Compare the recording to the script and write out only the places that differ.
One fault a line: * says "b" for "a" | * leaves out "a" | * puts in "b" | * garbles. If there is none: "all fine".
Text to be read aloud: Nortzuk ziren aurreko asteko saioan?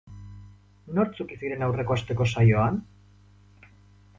all fine